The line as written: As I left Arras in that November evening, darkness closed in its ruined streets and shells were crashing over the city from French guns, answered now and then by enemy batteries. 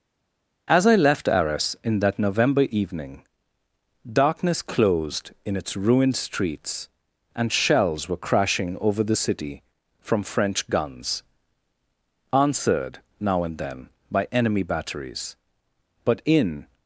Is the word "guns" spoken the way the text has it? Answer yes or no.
yes